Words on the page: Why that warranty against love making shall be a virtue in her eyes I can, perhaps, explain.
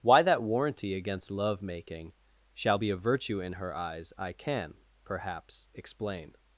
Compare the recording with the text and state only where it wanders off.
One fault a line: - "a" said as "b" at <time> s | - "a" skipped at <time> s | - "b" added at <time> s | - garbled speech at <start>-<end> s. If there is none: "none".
none